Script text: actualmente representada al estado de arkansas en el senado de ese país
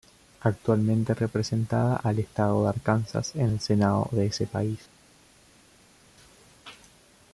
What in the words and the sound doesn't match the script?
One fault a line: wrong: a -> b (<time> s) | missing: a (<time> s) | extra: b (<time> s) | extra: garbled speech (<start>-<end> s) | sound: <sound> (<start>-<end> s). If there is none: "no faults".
no faults